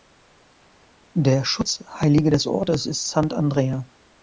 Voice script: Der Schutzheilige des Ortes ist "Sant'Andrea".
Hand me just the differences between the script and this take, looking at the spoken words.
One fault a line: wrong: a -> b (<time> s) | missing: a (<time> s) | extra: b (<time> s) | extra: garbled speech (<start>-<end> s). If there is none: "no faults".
no faults